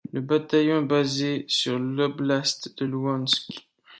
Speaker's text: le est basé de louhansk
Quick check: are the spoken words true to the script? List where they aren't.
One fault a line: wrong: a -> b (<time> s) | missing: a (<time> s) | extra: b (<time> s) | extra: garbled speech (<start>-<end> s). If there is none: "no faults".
extra: bataillon (0.2 s)
extra: sur l'oblast (1.5 s)